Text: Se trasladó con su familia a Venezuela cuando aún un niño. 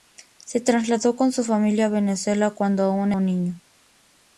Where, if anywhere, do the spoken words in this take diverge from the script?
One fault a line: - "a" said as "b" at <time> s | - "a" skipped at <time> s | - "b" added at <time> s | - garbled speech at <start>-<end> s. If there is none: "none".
none